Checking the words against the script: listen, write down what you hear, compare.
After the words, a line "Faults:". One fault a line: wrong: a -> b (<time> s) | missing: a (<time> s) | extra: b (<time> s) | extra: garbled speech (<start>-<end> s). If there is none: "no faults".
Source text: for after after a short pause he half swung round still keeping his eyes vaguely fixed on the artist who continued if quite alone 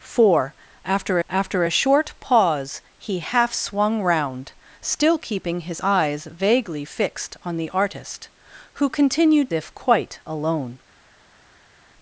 for after after a short pause he half swung round still keeping his eyes vaguely fixed on the artist who continued if quite alone
Faults:
no faults